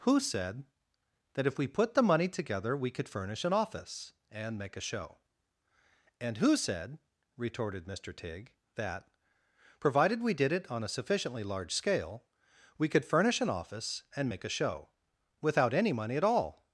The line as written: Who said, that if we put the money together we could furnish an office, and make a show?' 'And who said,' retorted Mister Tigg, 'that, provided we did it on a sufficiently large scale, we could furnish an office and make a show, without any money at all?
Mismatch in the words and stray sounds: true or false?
false